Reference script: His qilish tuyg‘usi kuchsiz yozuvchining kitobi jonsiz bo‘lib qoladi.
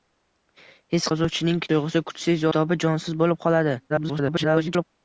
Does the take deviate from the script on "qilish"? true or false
true